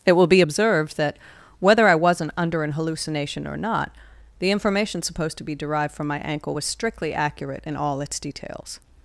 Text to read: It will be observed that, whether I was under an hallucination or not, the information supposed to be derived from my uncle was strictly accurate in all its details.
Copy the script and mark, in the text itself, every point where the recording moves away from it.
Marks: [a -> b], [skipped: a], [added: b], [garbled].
It will be observed that, whether I [was -> wasn't] under an hallucination or not, the information supposed to be derived from my [uncle -> ankle] was strictly accurate in all its details.